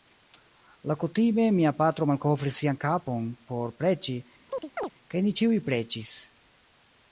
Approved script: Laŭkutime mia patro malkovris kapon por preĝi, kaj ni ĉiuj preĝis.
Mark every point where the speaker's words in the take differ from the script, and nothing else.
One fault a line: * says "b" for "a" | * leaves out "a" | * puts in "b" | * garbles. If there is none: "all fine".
* puts in "sian"